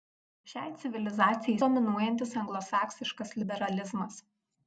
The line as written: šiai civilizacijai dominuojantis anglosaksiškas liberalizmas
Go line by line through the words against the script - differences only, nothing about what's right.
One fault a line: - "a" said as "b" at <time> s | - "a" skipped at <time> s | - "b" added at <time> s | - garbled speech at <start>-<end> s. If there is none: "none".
none